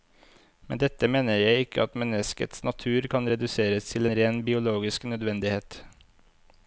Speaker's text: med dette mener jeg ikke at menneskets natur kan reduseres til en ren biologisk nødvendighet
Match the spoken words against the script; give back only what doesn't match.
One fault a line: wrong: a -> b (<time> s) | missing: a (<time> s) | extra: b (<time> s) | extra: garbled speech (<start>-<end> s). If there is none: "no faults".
no faults